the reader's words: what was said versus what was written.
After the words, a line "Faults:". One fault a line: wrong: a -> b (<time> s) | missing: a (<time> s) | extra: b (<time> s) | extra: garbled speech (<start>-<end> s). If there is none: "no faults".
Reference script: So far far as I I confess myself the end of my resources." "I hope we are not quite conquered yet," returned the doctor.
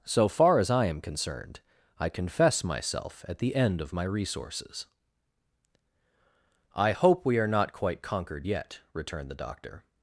So far as I am concerned, I confess myself at the end of my resources." "I hope we are not quite conquered yet," returned the doctor.
Faults:
missing: far (0.6 s)
extra: am concerned (0.8 s)
extra: at (3.3 s)